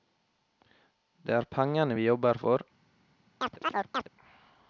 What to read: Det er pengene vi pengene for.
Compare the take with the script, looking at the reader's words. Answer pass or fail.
fail